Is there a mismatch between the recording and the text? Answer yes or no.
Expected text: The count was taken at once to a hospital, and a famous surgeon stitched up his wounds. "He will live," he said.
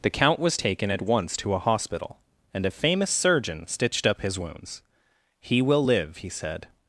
no